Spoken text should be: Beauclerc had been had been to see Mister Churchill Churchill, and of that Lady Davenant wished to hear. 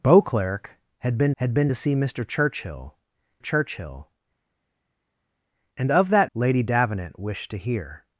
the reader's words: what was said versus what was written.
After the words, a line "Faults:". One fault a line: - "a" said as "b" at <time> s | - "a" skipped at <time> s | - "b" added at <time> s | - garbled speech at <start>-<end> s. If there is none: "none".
Beauclerc had been had been to see Mister Churchill Churchill, and of that Lady Davenant wished to hear.
Faults:
none